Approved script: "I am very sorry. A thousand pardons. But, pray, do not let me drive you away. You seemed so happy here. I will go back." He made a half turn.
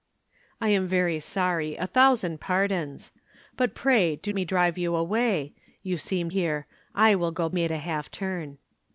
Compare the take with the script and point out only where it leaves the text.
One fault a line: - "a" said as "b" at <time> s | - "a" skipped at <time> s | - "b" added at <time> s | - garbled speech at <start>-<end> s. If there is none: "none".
- "not let" skipped at 4.3 s
- "so happy" skipped at 6.3 s
- "back He" skipped at 7.5 s